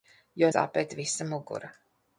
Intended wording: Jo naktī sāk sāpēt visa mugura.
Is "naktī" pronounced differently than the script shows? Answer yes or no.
yes